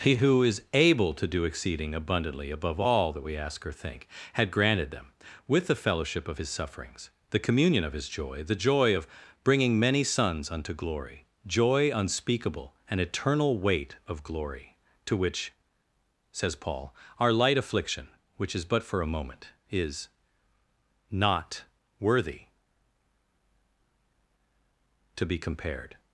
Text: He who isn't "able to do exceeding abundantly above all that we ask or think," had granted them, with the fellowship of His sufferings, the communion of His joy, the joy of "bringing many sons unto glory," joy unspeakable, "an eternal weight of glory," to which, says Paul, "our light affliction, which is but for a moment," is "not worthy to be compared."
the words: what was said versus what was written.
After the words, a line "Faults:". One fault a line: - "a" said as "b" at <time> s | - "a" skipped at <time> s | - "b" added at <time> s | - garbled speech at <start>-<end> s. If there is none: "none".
He who is "able to do exceeding abundantly above all that we ask or think," had granted them, with the fellowship of His sufferings, the communion of His joy, the joy of "bringing many sons unto glory," joy unspeakable, "an eternal weight of glory," to which, says Paul, "our light affliction, which is but for a moment," is "not worthy to be compared."
Faults:
- "isn't" said as "is" at 0.4 s